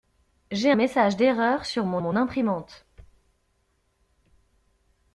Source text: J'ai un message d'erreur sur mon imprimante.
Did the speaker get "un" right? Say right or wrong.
wrong